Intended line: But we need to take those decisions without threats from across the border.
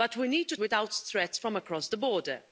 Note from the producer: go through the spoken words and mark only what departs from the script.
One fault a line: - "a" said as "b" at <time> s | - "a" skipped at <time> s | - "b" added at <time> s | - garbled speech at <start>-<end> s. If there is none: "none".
- "take those decisions" skipped at 0.6 s